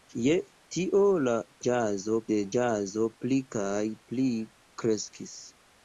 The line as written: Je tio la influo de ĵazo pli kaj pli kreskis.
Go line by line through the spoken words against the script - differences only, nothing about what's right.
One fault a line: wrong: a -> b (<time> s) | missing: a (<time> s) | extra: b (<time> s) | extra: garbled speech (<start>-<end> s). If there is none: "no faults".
wrong: influo -> ĵazo (1.7 s)